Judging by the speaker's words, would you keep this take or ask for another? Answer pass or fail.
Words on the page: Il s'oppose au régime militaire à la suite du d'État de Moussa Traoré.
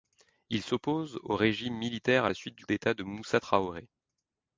pass